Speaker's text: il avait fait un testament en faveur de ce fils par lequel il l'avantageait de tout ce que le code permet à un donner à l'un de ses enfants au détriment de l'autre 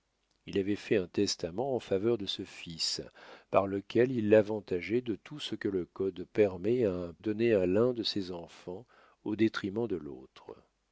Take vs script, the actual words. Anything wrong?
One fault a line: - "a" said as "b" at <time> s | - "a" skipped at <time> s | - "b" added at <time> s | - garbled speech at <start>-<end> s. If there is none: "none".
none